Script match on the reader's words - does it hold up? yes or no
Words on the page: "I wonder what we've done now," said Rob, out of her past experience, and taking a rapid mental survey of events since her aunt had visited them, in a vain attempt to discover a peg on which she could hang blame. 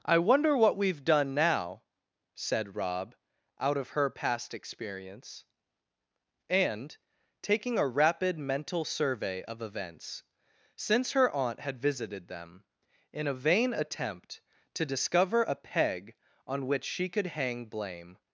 yes